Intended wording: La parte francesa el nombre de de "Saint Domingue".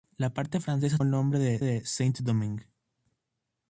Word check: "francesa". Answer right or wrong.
right